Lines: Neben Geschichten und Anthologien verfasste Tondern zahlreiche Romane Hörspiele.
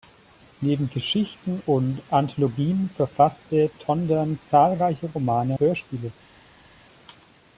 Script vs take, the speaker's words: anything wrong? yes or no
no